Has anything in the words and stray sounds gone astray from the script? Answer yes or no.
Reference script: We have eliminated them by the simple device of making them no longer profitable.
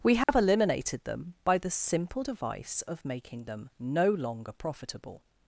yes